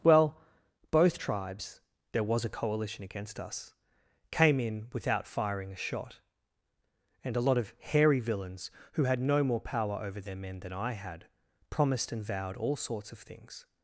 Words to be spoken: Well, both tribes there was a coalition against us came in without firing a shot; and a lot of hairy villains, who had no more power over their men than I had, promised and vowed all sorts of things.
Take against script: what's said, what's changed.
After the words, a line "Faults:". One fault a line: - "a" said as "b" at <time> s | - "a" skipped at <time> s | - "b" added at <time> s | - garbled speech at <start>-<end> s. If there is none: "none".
Well, both tribes there was a coalition against us came in without firing a shot; and a lot of hairy villains, who had no more power over their men than I had, promised and vowed all sorts of things.
Faults:
none